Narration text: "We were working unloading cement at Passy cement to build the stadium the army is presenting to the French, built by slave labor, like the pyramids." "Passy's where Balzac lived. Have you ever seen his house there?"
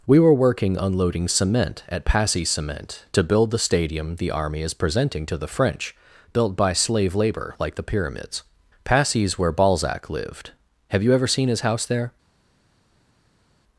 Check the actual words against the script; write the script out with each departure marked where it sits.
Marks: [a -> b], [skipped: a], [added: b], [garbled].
"We were working unloading cement at Passy cement to build the stadium the army is presenting to the French, built by slave labor, like the pyramids." "Passy's where Balzac lived. Have you ever seen his house there?"